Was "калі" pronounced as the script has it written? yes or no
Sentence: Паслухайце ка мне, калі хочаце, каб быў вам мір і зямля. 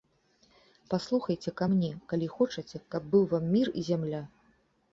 yes